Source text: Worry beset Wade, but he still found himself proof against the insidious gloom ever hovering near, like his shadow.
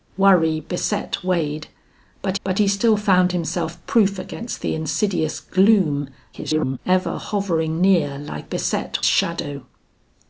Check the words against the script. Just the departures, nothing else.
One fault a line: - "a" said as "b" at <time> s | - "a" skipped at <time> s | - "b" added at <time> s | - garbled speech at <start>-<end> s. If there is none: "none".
- "but" added at 2.4 s
- garbled speech at 6.3-6.8 s
- "his" said as "beset" at 8.4 s